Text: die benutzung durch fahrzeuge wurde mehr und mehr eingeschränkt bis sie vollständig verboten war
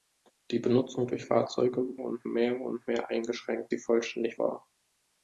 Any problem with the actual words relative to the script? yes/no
yes